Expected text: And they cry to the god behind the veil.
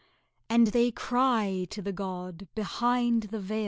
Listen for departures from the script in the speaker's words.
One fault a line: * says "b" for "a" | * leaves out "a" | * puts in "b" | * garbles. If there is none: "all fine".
all fine